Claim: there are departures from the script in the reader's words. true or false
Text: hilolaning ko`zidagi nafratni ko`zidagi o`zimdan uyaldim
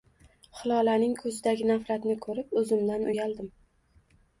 true